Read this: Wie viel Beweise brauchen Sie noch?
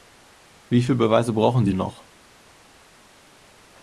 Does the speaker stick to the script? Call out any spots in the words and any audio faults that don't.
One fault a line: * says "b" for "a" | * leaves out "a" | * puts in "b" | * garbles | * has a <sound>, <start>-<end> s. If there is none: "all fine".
all fine